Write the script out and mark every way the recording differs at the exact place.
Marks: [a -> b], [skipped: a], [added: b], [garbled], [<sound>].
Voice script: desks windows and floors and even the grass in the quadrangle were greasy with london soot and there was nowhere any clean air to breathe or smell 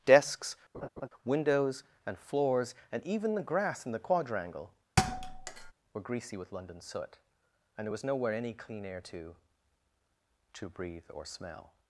desks [laugh] windows and floors and even the grass in the quadrangle [thud] were greasy with london soot and there was nowhere any clean air to [added: to] breathe or smell